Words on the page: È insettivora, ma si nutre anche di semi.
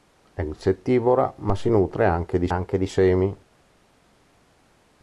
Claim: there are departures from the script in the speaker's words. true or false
true